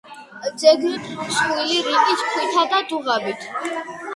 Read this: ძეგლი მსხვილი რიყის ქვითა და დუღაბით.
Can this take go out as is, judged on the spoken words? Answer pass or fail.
pass